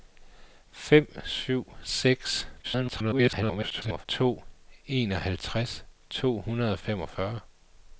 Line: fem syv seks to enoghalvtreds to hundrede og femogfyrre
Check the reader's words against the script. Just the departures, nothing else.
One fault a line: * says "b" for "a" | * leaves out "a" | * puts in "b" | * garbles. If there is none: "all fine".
* garbles